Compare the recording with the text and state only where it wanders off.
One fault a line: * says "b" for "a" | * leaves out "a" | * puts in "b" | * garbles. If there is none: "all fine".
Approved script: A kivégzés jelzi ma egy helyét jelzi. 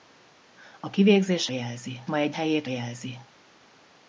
all fine